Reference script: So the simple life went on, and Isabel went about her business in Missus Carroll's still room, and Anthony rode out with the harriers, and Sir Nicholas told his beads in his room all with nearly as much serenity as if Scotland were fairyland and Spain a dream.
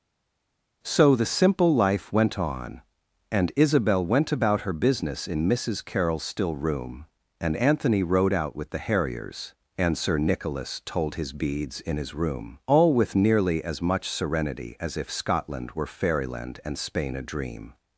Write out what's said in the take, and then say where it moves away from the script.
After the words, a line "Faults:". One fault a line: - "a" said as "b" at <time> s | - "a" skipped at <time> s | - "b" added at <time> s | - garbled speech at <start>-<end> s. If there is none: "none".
So the simple life went on, and Isabel went about her business in Missus Carroll's still room, and Anthony rode out with the harriers, and Sir Nicholas told his beads in his room all with nearly as much serenity as if Scotland were fairyland and Spain a dream.
Faults:
none